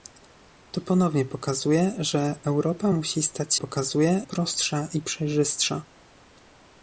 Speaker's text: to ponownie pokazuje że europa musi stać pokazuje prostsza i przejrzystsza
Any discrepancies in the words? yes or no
no